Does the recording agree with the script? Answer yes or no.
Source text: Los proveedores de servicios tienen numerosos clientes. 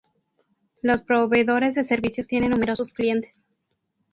yes